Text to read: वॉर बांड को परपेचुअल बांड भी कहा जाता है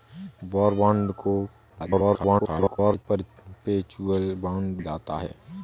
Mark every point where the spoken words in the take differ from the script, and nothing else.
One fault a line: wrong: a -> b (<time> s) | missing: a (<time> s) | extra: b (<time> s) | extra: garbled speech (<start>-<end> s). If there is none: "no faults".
extra: garbled speech (1.7-3.1 s)
missing: भी कहा (4.8 s)